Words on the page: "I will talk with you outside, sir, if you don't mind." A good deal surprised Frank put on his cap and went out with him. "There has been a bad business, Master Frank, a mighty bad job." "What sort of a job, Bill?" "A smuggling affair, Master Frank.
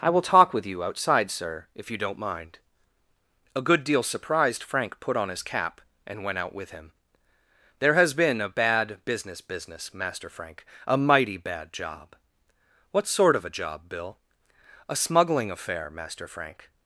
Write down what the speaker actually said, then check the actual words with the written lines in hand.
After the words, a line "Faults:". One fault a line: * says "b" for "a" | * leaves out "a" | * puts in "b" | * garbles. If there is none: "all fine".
"I will talk with you outside, sir, if you don't mind." A good deal surprised Frank put on his cap and went out with him. "There has been a bad business business, Master Frank, a mighty bad job." "What sort of a job, Bill?" "A smuggling affair, Master Frank.
Faults:
* puts in "business"